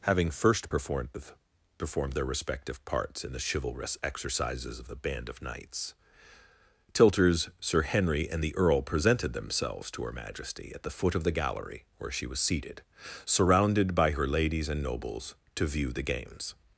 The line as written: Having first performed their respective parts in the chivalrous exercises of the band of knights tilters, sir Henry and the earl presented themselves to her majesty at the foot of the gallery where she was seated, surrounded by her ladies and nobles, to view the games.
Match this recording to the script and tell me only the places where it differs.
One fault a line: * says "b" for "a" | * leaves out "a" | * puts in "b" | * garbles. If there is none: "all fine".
* puts in "performed"